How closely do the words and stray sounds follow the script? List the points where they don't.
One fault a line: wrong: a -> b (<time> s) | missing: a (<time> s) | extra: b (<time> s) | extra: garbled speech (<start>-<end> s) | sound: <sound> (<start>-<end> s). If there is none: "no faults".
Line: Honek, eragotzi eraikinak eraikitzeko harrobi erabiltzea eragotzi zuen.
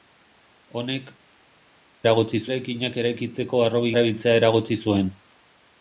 no faults